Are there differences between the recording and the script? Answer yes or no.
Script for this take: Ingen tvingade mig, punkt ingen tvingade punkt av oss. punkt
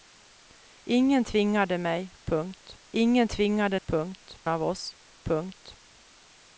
no